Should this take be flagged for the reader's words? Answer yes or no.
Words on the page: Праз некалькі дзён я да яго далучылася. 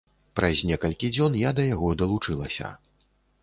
no